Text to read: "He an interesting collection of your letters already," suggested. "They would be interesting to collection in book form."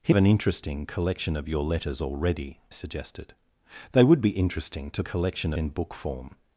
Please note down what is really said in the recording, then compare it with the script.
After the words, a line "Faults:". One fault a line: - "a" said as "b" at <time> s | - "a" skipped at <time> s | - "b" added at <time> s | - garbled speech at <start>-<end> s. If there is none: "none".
"He an interesting collection of your letters already," suggested. "They would be interesting to collection in book form."
Faults:
none